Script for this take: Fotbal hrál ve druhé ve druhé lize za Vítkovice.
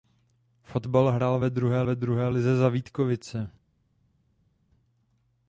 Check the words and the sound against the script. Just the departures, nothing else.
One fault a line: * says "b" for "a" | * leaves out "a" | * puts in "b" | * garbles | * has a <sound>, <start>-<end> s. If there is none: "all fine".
all fine